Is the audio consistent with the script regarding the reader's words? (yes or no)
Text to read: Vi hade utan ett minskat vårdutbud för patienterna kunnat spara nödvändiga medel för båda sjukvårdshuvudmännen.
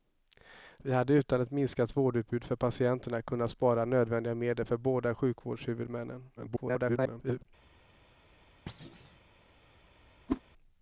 no